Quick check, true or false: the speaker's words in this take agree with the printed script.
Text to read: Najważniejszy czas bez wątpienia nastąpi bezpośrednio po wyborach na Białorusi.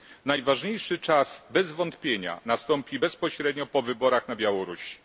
true